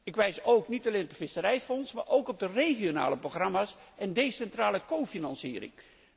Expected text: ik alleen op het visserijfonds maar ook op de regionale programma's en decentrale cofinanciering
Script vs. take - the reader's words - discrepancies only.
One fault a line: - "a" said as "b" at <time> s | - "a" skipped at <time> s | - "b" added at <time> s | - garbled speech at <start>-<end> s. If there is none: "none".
- "wijs niet" added at 0.1 s